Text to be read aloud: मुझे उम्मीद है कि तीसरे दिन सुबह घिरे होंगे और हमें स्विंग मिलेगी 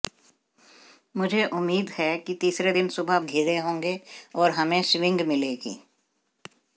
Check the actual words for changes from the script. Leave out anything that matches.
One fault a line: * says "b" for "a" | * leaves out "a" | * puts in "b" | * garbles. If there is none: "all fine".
all fine